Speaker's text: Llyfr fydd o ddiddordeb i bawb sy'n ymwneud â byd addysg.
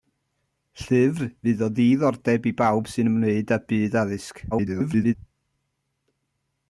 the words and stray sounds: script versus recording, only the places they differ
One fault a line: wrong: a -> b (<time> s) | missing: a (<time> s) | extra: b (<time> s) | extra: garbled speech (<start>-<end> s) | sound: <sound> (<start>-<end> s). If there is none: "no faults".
extra: garbled speech (4.5-5.1 s)